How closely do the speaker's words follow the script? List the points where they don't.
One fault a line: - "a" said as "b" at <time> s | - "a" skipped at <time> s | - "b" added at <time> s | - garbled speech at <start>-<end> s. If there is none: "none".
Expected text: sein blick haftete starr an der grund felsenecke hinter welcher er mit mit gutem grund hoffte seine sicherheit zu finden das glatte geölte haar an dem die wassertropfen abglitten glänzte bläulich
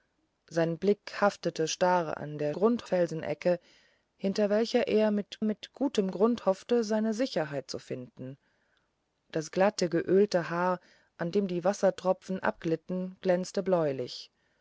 none